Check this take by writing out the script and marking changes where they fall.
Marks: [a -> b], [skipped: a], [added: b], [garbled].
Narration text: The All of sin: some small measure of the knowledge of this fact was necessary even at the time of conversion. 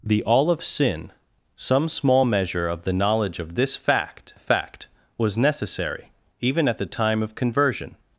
The All of sin: some small measure of the knowledge of this fact [added: fact] was necessary even at the time of conversion.